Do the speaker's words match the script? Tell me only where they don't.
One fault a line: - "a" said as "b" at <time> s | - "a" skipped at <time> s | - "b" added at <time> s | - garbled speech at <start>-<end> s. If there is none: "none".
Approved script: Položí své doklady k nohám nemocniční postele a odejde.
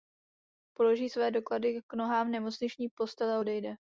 none